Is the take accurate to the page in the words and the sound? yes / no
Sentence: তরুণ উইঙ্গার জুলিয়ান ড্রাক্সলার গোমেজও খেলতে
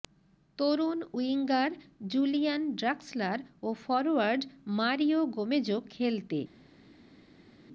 no